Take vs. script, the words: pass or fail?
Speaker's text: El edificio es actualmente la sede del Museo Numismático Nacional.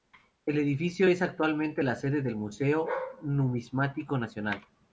pass